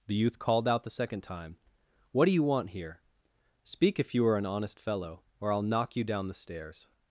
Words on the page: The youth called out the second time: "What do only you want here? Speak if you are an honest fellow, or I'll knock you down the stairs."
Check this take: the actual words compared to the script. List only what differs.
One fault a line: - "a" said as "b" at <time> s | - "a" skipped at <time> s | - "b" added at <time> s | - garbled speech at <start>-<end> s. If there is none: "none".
- "only" skipped at 2.3 s